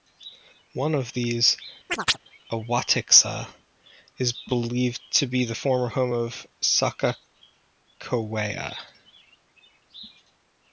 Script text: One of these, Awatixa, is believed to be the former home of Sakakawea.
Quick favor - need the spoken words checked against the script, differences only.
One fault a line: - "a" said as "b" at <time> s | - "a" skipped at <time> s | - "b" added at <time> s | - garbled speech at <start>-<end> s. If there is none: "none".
none